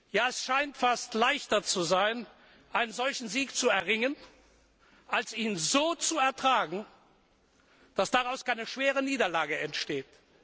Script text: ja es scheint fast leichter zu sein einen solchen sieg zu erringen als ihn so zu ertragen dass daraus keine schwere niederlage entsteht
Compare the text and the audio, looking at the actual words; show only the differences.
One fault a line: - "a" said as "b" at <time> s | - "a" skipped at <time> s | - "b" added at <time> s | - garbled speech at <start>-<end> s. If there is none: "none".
none